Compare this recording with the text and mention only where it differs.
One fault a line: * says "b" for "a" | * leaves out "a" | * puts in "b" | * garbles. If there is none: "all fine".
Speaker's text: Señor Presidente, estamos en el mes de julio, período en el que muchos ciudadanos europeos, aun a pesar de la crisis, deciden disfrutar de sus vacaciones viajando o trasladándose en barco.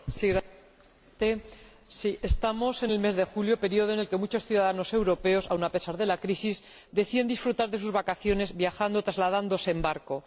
all fine